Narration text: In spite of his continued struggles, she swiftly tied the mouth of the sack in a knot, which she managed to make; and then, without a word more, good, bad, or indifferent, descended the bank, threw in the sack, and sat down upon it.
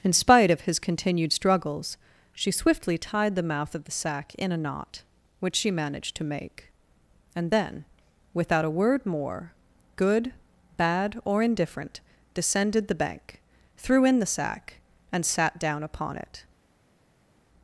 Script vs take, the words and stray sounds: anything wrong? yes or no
no